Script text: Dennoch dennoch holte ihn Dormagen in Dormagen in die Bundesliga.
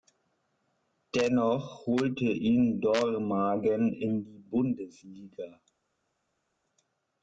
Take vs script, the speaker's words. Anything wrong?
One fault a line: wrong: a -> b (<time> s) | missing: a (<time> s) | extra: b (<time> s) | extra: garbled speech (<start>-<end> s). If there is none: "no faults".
missing: dennoch (1.9 s)
missing: Dormagen in (4.2 s)